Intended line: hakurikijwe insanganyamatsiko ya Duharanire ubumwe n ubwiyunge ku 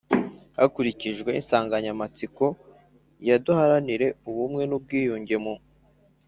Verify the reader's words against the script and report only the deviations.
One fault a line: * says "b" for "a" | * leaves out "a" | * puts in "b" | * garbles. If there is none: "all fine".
* says "mu" for "ku"